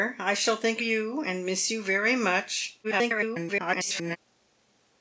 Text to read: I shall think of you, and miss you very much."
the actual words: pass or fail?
fail